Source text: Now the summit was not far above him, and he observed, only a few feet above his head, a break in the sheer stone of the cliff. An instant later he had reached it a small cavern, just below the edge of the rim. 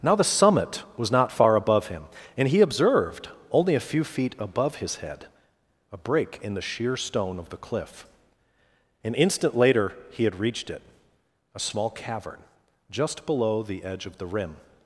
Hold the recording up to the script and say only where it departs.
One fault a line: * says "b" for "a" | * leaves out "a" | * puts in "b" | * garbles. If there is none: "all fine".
all fine